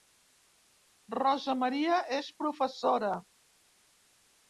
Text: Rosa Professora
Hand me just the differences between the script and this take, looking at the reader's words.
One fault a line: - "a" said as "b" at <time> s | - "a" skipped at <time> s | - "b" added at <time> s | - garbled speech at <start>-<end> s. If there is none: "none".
- "Maria és" added at 1.6 s